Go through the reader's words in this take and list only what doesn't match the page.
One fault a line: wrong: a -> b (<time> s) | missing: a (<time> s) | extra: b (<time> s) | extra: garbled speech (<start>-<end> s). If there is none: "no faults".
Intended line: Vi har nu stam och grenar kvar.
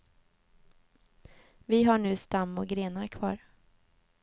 no faults